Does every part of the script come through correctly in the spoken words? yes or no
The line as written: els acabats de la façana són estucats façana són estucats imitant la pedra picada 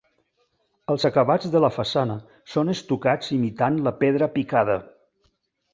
no